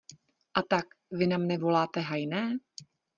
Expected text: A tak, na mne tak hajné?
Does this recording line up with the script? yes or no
no